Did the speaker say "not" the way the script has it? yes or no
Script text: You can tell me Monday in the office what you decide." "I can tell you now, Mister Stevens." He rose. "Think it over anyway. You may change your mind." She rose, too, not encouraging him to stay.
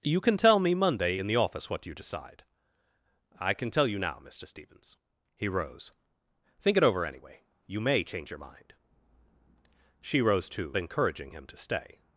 no